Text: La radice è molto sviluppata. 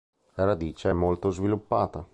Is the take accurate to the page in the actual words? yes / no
yes